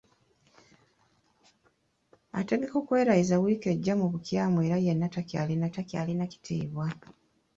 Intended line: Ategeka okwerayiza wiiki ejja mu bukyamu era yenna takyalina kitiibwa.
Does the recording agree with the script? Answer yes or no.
no